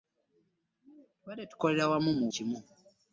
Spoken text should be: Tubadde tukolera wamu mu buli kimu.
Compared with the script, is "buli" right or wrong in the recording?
wrong